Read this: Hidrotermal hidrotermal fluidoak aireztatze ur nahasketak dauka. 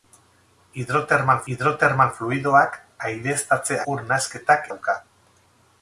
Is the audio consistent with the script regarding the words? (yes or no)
yes